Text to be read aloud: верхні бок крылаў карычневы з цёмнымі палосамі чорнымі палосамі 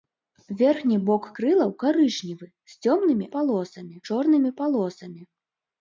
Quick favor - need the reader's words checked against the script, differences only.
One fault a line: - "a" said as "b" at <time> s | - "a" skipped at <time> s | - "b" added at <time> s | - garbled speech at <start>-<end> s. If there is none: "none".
none